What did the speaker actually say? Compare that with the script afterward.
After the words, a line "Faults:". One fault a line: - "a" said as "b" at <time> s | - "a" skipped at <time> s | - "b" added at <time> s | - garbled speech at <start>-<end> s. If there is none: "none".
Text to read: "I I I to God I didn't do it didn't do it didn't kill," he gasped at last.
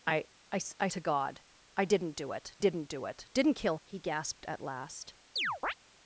"I I I to God I didn't do it didn't do it didn't kill," he gasped at last.
Faults:
none